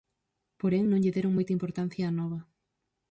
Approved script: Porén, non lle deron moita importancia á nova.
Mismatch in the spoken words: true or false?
false